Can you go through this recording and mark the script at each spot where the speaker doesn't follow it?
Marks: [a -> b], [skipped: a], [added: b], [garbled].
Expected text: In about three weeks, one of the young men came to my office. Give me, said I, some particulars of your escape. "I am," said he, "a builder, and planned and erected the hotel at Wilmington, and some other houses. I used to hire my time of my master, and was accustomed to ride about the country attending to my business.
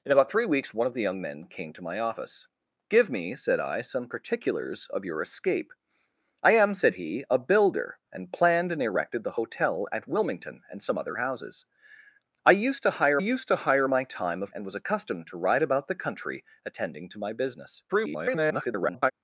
In about three weeks, one of the young men came to my office. Give me, said I, some particulars of your escape. "I am," said he, "a builder, and planned and erected the hotel at Wilmington, and some other houses. I used to hire [added: used to hire] my time of [skipped: my master,] and was accustomed to ride about the country attending to my business. [garbled]